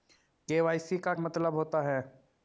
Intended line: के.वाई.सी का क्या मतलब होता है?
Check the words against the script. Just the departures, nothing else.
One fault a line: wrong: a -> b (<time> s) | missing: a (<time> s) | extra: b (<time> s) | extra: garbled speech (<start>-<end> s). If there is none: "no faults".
missing: क्या (1.1 s)